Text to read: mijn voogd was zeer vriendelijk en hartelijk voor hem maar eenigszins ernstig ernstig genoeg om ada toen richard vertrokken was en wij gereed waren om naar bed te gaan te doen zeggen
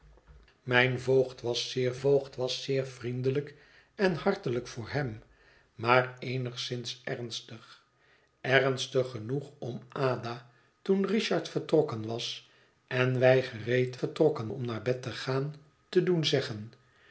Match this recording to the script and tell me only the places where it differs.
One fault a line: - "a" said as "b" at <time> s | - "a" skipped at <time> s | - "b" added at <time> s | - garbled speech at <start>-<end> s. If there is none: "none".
- "voogd was zeer" added at 2.0 s
- "waren" said as "vertrokken" at 13.9 s